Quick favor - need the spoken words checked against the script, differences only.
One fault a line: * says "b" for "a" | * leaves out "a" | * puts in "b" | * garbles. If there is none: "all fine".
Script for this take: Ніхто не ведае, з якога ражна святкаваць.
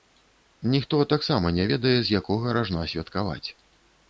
* puts in "таксама"